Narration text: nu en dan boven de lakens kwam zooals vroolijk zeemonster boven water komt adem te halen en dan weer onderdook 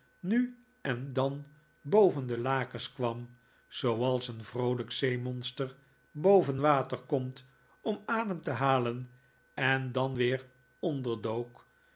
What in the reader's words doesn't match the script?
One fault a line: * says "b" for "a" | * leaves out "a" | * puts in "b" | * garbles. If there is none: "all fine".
* puts in "een"
* puts in "om"